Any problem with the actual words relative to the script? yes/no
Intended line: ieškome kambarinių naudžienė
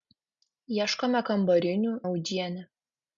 no